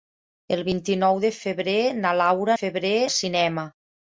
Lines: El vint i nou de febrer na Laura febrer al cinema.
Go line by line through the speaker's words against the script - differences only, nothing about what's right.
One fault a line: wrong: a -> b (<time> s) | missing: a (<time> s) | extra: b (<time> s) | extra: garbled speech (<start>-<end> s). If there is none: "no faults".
no faults